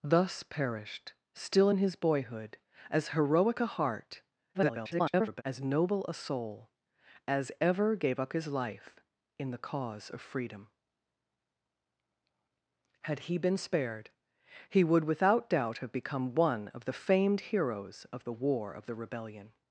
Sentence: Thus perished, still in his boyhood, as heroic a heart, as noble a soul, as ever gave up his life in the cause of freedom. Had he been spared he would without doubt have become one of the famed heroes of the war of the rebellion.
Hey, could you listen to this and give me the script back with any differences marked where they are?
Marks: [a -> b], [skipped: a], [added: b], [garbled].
Thus perished, still in his boyhood, as heroic a heart, [garbled] as noble a soul, as ever gave up his life in the cause of freedom. Had he been spared he would without doubt have become one of the famed heroes of the war of the rebellion.